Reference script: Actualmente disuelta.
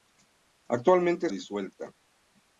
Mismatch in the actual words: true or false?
false